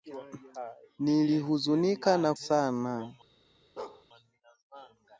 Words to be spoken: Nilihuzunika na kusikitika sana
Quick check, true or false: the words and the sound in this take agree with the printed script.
false